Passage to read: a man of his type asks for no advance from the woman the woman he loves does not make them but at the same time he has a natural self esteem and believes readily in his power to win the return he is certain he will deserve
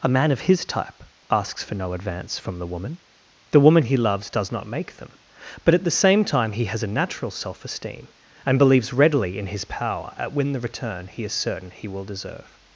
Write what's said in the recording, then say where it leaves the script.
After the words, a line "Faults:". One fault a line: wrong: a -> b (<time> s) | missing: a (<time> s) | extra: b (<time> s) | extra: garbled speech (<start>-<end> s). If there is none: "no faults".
a man of his type asks for no advance from the woman the woman he loves does not make them but at the same time he has a natural self esteem and believes readily in his power at win the return he is certain he will deserve
Faults:
wrong: to -> at (10.2 s)